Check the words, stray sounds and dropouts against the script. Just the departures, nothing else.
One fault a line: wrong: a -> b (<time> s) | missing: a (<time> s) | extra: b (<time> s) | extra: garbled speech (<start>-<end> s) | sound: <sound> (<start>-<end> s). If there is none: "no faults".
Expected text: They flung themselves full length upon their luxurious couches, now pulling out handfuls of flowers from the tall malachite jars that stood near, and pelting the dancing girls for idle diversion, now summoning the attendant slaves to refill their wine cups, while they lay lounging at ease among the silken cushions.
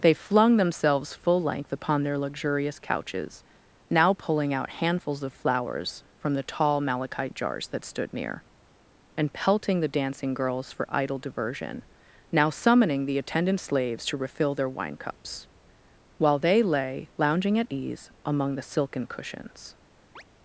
sound: chirp (20.2-20.2 s)